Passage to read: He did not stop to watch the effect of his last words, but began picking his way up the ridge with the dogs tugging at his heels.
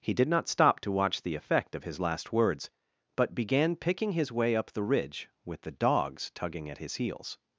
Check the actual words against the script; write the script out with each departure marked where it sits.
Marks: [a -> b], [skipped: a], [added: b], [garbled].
He did not stop to watch the effect of his last words, but began picking his way up the ridge with the dogs tugging at his heels.